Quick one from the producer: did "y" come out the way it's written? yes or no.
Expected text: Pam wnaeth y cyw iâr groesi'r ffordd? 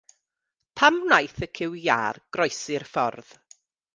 yes